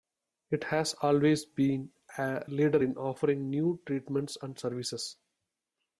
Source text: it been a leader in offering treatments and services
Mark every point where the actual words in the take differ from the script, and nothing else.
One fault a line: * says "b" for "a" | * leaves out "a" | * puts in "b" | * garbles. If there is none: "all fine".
* puts in "has always"
* puts in "new"